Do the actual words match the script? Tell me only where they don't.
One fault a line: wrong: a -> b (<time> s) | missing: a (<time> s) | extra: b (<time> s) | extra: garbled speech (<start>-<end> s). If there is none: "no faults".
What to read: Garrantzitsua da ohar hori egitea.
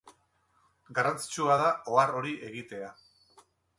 no faults